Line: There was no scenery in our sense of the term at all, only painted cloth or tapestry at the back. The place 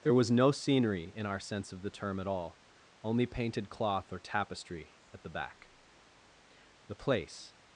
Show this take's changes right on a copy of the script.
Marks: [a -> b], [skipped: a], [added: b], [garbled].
There was no scenery in our sense of the term at all, only painted cloth or tapestry at the back. The place